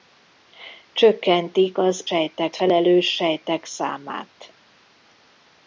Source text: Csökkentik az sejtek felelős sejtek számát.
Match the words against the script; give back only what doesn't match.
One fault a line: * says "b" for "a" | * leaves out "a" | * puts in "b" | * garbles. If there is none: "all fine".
all fine